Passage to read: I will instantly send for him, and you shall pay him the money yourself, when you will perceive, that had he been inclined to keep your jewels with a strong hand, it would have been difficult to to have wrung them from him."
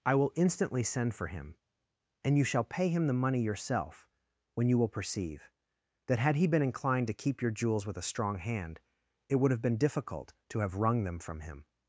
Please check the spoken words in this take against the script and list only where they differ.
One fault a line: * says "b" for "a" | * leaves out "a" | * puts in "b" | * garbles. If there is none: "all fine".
* leaves out "to"